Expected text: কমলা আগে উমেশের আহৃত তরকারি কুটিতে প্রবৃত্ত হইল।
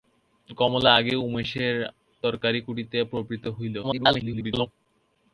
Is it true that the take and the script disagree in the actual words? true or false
true